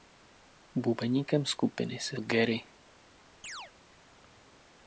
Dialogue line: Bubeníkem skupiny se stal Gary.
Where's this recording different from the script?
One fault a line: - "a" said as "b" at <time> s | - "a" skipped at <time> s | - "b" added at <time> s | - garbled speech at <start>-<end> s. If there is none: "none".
- "stal" skipped at 2.2 s